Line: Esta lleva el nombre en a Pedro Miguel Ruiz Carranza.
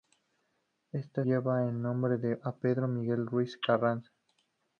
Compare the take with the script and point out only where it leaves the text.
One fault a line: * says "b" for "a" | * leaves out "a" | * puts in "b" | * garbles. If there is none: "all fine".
all fine